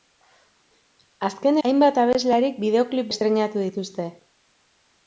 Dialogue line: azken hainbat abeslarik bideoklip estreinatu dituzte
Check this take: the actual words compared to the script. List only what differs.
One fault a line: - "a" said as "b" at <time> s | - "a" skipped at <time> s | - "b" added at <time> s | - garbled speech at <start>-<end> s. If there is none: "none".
none